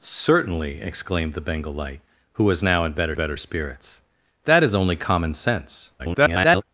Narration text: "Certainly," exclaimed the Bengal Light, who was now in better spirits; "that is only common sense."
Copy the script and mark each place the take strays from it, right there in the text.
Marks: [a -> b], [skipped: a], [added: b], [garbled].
"Certainly," exclaimed the Bengal Light, who was now in better [added: better] spirits; "that is only common sense." [garbled]